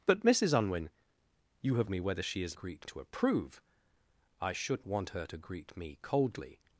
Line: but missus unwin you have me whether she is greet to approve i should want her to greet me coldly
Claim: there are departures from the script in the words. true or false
false